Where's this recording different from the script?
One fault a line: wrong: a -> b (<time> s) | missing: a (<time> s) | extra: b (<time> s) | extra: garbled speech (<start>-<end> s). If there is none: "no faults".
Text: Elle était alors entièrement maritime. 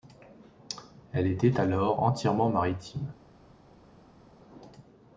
no faults